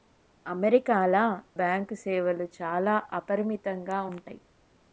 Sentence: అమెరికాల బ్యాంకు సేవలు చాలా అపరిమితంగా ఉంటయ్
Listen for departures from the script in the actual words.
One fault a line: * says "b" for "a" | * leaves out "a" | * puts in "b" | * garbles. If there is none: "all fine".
all fine